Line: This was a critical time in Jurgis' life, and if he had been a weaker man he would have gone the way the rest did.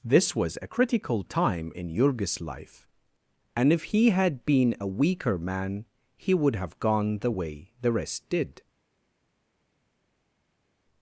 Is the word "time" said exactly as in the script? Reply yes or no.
yes